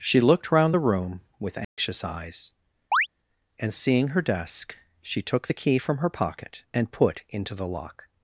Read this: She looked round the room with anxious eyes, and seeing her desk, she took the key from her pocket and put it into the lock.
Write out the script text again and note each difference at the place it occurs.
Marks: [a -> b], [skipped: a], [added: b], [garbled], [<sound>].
She looked round the room with anxious [dropout] eyes, [chirp] and seeing her desk, she took the key from her pocket and put [skipped: it] into the lock.